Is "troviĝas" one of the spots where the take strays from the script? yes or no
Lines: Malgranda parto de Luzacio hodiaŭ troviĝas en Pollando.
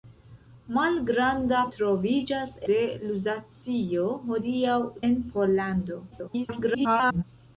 yes